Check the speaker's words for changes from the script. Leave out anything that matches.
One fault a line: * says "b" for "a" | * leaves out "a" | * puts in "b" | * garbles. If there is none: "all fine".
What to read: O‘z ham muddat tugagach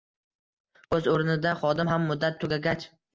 * puts in "o‘rnida xodim"